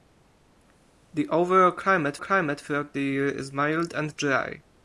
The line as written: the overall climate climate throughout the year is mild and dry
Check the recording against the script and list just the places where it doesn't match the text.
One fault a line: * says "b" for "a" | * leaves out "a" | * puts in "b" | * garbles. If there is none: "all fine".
all fine